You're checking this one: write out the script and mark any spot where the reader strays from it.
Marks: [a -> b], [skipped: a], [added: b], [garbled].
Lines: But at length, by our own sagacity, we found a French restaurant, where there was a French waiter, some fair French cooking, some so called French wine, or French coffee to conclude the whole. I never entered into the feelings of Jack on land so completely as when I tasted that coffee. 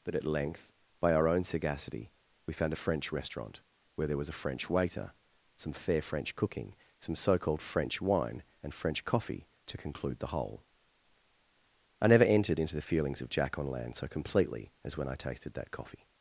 But at length, by our own sagacity, we found a French restaurant, where there was a French waiter, some fair French cooking, some so called French wine, [or -> and] French coffee to conclude the whole. I never entered into the feelings of Jack on land so completely as when I tasted that coffee.